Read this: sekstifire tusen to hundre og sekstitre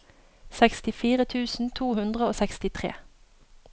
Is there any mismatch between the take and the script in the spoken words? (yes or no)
no